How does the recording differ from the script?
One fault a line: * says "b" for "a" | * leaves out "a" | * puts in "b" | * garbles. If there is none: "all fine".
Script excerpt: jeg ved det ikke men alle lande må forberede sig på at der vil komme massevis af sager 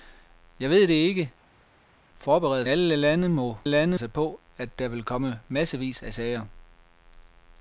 * says "forberede" for "men"
* says "lande" for "forberede"